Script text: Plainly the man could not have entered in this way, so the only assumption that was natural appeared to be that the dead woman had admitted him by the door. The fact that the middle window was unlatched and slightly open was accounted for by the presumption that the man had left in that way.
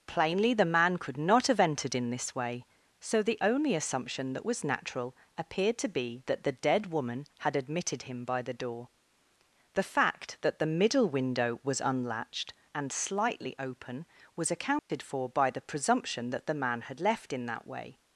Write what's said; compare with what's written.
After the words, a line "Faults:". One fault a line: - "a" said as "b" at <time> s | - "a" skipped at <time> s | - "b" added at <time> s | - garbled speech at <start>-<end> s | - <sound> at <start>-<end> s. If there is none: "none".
Plainly the man could not have entered in this way, so the only assumption that was natural appeared to be that the dead woman had admitted him by the door. The fact that the middle window was unlatched and slightly open was accounted for by the presumption that the man had left in that way.
Faults:
- dropout at 14.8-14.9 s